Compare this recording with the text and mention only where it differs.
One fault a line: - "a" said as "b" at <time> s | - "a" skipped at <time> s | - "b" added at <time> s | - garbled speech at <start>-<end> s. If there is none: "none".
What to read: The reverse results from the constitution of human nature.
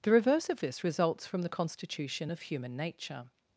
- "of this" added at 0.5 s